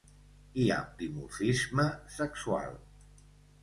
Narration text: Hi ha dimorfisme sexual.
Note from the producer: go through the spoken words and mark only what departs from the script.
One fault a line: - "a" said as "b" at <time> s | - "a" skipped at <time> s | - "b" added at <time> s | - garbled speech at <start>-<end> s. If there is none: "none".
none